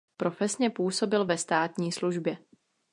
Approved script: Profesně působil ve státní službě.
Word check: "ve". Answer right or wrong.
right